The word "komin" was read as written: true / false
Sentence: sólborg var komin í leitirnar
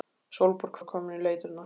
true